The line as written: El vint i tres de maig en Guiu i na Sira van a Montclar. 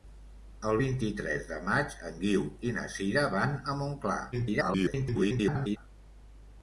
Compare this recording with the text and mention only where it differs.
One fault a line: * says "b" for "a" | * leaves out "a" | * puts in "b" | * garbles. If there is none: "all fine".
* garbles